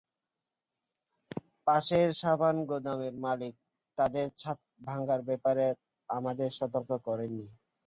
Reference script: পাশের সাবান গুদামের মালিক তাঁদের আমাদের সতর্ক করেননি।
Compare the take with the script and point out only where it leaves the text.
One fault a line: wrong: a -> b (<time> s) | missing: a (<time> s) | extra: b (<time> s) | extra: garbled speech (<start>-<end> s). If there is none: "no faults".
extra: ছাদ ভাঙার ব্যাপারে (4.4 s)